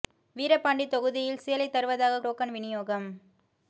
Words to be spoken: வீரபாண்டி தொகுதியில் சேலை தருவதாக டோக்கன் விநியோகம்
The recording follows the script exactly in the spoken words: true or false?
true